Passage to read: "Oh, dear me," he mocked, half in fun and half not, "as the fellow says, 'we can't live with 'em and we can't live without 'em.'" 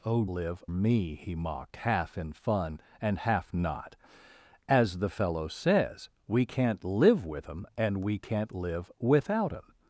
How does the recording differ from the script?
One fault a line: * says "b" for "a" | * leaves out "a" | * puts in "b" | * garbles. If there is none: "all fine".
* says "live" for "dear"